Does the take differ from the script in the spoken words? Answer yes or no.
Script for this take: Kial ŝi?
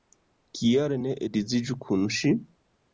yes